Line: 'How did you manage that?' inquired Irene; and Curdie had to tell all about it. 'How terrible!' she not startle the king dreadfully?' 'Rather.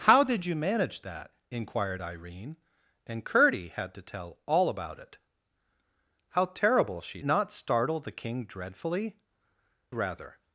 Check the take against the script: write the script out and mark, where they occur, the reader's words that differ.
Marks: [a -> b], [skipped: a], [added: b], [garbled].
'How did you manage that?' inquired Irene; and Curdie had to tell all about it. 'How terrible!' she not startle the king dreadfully?' 'Rather.